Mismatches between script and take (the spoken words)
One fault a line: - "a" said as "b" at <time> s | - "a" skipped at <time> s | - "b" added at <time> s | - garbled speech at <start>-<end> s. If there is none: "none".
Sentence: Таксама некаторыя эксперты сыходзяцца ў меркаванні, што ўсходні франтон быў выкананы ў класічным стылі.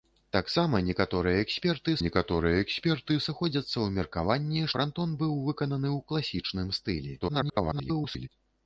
- "некаторыя эксперты" added at 2.0 s
- "што ўсходні" skipped at 4.7 s
- garbled speech at 7.2-8.3 s